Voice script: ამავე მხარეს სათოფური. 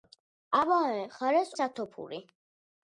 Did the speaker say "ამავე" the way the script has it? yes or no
yes